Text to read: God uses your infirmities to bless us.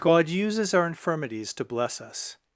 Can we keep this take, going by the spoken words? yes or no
no